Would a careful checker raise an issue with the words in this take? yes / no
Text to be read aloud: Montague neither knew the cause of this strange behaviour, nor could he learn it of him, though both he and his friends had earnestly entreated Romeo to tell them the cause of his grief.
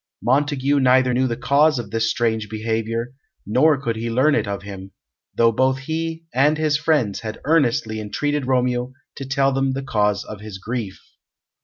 no